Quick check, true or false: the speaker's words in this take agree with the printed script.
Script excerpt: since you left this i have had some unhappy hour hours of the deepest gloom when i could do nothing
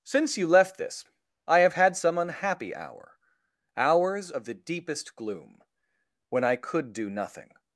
true